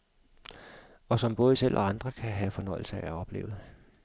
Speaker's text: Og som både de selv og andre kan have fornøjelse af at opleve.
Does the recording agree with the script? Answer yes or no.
no